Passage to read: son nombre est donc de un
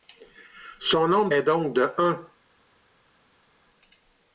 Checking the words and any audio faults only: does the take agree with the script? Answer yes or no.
yes